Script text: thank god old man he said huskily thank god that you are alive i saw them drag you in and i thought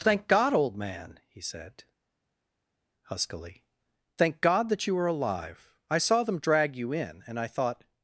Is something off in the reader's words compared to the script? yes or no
no